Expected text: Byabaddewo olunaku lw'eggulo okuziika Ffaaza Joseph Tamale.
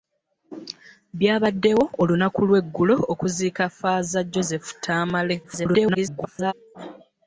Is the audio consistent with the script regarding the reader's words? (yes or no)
no